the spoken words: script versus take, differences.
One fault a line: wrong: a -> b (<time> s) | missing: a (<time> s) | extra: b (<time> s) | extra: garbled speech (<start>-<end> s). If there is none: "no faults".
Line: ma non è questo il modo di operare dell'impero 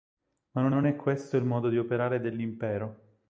extra: non (0.7 s)